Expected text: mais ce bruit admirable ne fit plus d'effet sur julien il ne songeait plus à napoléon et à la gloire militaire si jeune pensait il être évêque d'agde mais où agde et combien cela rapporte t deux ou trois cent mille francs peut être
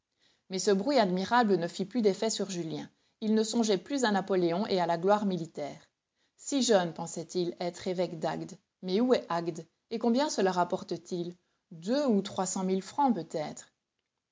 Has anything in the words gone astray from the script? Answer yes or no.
yes